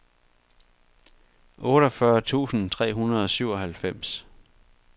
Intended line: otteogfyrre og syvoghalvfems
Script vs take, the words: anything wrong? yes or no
yes